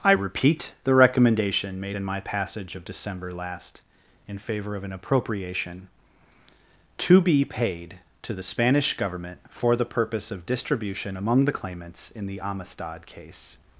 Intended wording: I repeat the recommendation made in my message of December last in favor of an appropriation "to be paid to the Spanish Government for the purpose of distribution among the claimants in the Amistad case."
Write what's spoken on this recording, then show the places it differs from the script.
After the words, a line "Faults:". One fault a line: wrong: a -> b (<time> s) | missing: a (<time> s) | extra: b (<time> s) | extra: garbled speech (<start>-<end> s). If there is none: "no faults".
I repeat the recommendation made in my passage of December last in favor of an appropriation "to be paid to the Spanish Government for the purpose of distribution among the claimants in the Amistad case."
Faults:
wrong: message -> passage (2.2 s)